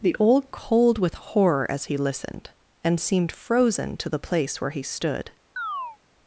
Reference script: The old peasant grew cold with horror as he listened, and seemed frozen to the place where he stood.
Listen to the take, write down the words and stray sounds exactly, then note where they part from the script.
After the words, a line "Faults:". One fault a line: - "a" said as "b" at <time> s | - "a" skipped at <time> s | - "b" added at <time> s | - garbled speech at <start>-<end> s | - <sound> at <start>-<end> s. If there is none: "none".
The old cold with horror as he listened, and seemed frozen to the place where he stood.
Faults:
- "peasant grew" skipped at 0.5 s
- chirp at 5.6-6.0 s